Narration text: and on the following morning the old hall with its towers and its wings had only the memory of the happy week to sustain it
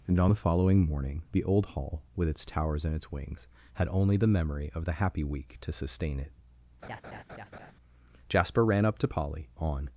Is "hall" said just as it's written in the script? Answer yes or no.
yes